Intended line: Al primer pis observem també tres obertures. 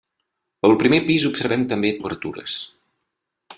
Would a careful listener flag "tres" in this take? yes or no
yes